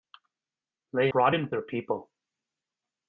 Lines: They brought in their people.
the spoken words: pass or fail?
pass